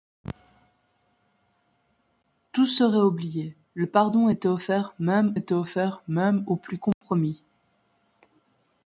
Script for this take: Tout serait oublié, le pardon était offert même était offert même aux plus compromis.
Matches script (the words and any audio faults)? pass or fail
fail